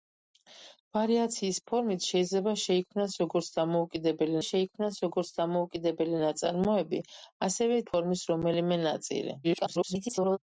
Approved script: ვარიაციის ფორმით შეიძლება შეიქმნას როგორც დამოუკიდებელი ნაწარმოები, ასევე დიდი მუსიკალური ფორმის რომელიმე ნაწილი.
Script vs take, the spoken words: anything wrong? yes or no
yes